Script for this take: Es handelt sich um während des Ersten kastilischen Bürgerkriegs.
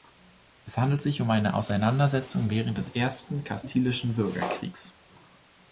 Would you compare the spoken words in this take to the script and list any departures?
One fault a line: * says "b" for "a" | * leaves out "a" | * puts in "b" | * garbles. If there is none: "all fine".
* puts in "eine Auseinandersetzung"